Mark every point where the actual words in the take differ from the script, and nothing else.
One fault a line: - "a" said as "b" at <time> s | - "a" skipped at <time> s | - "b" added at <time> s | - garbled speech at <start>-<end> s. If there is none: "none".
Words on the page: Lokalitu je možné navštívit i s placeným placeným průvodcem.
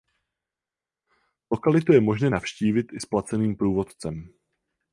- "placeným" skipped at 3.6 s